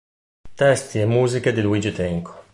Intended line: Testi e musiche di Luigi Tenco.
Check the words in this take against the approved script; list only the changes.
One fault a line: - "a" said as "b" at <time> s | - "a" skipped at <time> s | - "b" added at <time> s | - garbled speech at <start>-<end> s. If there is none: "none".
none